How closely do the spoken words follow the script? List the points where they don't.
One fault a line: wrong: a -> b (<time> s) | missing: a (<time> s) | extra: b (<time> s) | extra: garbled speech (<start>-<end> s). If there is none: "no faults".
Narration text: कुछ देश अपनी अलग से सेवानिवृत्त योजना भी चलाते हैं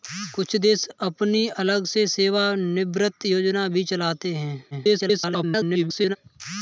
extra: garbled speech (4.7-6.2 s)